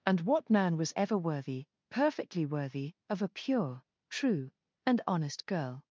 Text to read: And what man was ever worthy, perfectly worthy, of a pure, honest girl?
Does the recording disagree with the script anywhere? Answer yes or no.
yes